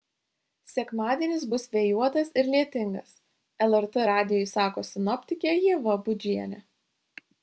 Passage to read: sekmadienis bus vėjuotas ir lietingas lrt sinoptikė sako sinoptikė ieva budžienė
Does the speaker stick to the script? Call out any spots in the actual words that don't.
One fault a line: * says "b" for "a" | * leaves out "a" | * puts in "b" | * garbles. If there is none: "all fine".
* says "radijui" for "sinoptikė"